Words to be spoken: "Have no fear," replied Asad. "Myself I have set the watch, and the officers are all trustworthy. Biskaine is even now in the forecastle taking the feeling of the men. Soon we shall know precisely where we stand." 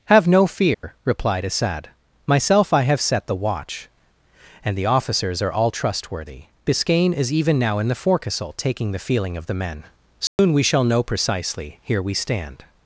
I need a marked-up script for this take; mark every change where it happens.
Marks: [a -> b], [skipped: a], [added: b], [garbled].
"Have no fear," replied Asad. "Myself I have set the watch, and the officers are all trustworthy. Biskaine is even now in the forecastle taking the feeling of the men. Soon we shall know precisely [where -> here] we stand."